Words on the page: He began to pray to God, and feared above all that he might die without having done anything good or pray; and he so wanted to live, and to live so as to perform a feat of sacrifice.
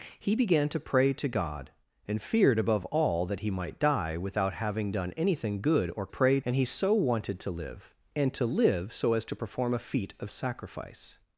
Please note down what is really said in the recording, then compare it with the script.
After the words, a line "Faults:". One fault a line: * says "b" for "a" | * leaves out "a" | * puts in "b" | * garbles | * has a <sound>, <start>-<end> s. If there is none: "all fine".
He began to pray to God, and feared above all that he might die without having done anything good or pray; and he so wanted to live, and to live so as to perform a feat of sacrifice.
Faults:
all fine